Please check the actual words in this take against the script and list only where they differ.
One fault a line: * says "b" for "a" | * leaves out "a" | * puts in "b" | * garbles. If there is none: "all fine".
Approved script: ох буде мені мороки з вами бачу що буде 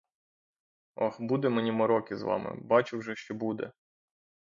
* puts in "вже"